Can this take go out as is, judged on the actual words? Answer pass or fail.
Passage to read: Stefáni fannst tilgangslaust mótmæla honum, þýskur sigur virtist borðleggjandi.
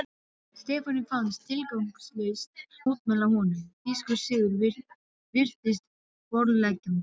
pass